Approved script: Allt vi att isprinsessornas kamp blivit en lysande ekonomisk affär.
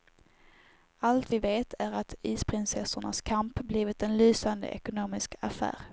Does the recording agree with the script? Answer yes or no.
no